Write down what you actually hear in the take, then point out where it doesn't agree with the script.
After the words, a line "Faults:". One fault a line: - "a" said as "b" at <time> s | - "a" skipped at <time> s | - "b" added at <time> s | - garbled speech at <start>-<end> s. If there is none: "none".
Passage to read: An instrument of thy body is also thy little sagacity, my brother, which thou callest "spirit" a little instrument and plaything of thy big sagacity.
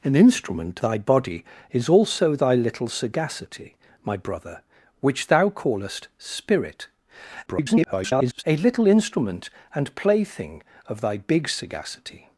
An instrument thy body is also thy little sagacity, my brother, which thou callest "spirit" [garbled] a little instrument and plaything of thy big sagacity.
Faults:
- "of" skipped at 0.8 s
- garbled speech at 7.5-8.4 s